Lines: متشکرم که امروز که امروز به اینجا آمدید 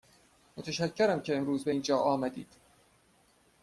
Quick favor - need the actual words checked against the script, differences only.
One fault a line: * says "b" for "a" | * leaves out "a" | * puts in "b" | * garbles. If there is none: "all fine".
* leaves out "که امروز"